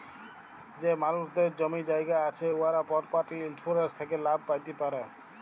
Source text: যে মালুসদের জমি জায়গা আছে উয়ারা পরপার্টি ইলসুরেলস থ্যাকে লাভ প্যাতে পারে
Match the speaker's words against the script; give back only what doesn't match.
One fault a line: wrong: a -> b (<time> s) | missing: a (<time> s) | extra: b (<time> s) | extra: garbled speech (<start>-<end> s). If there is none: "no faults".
no faults